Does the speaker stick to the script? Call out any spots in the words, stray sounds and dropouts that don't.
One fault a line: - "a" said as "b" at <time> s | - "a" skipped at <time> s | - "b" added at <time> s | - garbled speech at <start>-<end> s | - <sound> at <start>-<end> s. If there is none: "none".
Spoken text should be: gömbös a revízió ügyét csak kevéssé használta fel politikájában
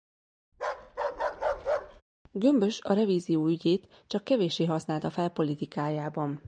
- bark at 0.5-2.0 s